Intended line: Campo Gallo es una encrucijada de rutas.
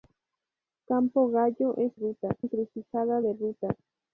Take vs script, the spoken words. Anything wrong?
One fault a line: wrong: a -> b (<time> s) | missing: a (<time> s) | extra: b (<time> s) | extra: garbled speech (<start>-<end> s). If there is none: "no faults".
wrong: una -> rutas (1.9 s)